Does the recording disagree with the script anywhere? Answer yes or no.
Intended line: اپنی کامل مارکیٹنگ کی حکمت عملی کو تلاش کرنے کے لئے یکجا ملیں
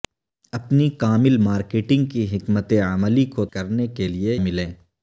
yes